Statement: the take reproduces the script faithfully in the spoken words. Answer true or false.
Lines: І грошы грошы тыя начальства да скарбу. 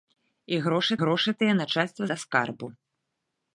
true